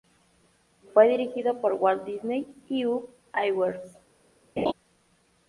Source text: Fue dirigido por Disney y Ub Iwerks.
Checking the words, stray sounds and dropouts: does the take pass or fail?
fail